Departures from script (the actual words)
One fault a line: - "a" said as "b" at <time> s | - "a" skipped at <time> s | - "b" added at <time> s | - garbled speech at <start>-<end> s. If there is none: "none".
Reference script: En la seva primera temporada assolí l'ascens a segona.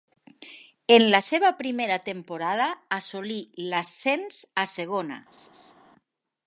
none